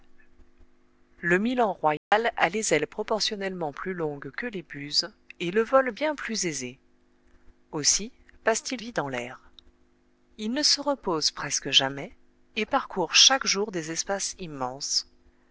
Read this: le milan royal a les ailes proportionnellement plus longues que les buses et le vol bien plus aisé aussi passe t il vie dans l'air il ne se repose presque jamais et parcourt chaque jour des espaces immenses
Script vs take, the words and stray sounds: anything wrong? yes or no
yes